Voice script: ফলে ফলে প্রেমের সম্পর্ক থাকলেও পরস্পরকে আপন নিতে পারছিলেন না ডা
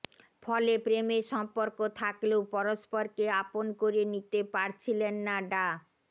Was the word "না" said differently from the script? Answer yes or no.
no